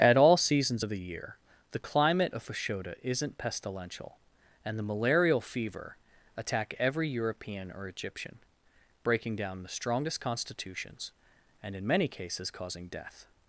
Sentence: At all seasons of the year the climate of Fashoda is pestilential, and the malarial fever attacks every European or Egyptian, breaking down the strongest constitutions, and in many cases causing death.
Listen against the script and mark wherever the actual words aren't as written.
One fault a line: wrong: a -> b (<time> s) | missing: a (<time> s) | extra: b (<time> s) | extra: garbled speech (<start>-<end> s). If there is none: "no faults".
wrong: is -> isn't (3.0 s)
wrong: attacks -> attack (6.4 s)